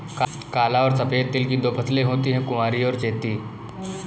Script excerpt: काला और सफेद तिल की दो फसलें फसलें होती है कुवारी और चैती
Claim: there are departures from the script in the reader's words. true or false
true